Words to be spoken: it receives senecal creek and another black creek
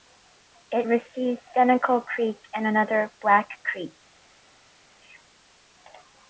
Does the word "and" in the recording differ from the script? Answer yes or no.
no